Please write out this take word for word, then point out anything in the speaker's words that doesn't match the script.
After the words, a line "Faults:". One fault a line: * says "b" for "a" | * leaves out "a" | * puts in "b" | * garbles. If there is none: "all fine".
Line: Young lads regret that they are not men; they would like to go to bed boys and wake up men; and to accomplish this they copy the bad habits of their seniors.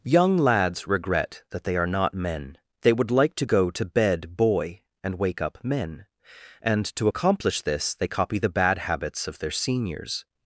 Young lads regret that they are not men; they would like to go to bed boy and wake up men; and to accomplish this they copy the bad habits of their seniors.
Faults:
* says "boy" for "boys"